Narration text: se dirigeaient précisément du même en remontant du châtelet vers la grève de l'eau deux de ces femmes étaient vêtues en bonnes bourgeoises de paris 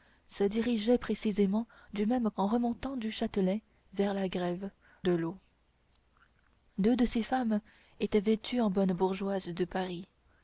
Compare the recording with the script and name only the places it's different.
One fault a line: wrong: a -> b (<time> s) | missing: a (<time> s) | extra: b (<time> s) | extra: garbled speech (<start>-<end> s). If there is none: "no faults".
no faults